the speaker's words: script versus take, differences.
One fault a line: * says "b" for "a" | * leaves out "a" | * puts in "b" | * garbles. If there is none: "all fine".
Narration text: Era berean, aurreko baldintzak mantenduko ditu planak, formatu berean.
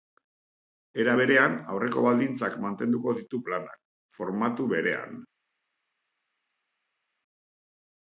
all fine